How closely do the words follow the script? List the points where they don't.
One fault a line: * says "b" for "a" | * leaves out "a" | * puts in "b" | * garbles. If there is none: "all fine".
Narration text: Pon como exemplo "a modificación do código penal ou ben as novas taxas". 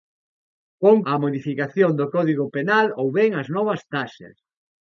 * leaves out "como exemplo"